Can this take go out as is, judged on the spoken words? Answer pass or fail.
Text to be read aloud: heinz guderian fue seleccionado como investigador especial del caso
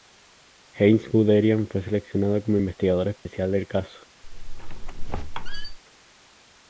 pass